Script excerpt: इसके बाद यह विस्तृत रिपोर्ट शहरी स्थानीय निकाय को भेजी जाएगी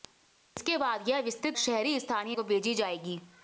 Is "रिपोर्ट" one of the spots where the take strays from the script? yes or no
yes